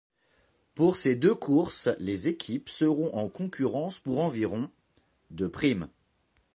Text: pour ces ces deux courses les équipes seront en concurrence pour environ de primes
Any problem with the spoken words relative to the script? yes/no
yes